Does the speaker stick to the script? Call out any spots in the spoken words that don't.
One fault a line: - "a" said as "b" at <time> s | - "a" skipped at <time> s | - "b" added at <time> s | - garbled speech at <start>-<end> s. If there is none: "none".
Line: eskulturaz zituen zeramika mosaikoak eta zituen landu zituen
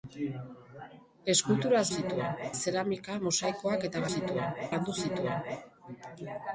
none